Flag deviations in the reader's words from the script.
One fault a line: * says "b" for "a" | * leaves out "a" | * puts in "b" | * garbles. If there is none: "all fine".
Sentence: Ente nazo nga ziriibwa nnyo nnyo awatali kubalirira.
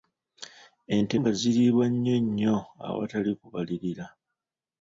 * leaves out "nazo"